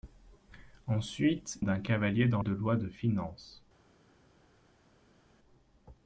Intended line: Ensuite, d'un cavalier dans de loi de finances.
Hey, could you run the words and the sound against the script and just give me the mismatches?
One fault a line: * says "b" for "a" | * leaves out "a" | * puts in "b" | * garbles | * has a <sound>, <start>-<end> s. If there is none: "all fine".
all fine